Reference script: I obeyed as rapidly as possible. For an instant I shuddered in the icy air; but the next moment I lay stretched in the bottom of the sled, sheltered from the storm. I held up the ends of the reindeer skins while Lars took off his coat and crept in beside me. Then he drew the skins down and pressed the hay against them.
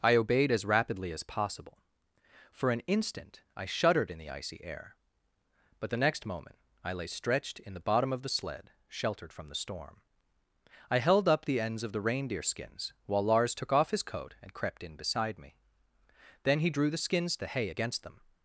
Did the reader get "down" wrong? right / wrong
wrong